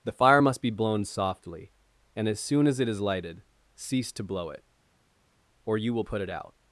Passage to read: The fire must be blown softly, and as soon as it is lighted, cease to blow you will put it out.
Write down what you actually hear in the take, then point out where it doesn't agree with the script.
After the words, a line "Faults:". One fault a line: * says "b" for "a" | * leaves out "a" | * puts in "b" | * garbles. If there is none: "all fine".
The fire must be blown softly, and as soon as it is lighted, cease to blow it, or you will put it out.
Faults:
* puts in "it or"